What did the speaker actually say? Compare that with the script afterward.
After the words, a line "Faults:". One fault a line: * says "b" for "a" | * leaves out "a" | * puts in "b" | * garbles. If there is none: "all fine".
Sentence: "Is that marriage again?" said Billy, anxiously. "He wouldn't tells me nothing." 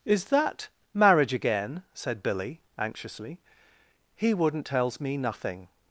"Is that marriage again?" said Billy, anxiously. "He wouldn't tells me nothing."
Faults:
all fine